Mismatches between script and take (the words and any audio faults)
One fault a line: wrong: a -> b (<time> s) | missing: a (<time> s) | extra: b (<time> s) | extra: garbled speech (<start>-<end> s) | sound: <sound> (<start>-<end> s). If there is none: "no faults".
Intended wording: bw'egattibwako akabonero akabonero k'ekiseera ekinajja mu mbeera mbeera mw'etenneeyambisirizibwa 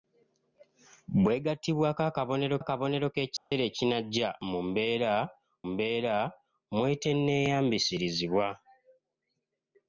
sound: dropout (3.4-3.5 s)